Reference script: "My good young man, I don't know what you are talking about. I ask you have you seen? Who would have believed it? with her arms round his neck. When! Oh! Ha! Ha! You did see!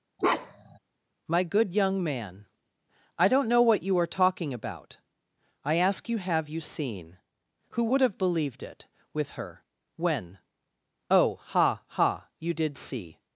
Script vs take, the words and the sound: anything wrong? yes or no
yes